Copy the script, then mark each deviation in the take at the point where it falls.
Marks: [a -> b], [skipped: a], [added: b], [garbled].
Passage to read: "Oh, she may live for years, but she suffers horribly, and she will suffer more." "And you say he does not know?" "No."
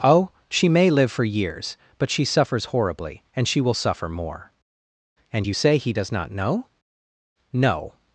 "Oh, she may live for years, but she suffers horribly, and she will suffer more." "And you say he does not know?" "No."